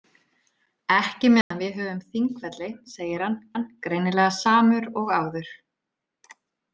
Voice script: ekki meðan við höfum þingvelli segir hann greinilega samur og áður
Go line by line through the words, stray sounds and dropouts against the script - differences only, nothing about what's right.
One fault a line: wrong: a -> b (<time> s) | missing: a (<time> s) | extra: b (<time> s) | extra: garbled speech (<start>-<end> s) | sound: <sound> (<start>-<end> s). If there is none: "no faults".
sound: dropout (1.4-1.5 s)
extra: hann (3.6 s)